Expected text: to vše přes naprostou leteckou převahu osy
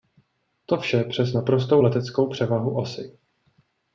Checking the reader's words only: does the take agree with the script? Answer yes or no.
yes